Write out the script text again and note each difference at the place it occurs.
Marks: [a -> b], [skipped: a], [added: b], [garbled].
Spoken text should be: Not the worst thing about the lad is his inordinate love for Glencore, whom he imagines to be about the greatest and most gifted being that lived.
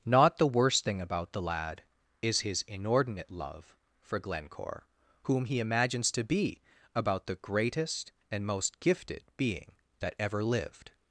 Not the worst thing about the lad is his inordinate love for Glencore, whom he imagines to be about the greatest and most gifted being that [added: ever] lived.